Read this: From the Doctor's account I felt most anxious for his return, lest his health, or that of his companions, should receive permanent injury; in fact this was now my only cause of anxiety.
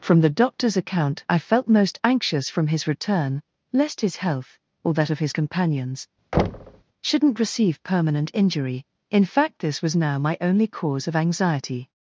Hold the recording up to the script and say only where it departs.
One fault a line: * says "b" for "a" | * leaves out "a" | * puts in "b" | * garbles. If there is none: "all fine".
* says "from" for "for"
* says "shouldn't" for "should"